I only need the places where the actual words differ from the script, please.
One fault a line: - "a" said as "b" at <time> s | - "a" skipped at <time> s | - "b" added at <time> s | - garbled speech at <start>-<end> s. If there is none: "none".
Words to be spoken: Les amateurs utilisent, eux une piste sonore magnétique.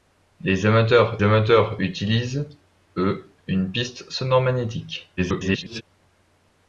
- "amateurs" added at 1.2 s
- garbled speech at 5.2-5.8 s